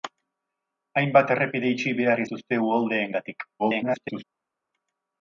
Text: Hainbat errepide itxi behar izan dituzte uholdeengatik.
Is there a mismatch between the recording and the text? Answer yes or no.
yes